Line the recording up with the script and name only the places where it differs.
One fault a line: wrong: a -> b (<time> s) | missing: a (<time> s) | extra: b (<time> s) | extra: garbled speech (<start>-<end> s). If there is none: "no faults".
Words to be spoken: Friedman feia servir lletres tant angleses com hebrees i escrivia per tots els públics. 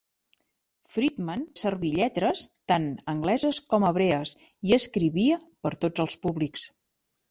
missing: feia (1.4 s)